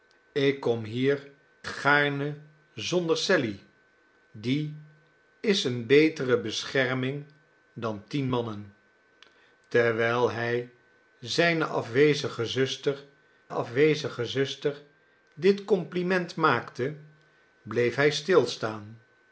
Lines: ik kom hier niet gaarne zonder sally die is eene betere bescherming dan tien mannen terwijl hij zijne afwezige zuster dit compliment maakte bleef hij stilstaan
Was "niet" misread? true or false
true